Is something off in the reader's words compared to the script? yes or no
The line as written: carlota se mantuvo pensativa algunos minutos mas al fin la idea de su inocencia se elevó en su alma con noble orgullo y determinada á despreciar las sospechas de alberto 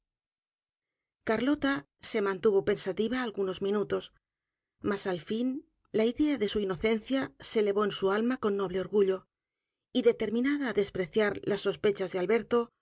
no